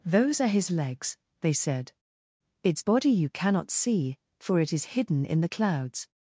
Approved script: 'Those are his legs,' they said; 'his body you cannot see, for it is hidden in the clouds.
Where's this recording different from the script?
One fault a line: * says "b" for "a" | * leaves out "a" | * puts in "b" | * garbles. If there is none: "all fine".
* says "its" for "his"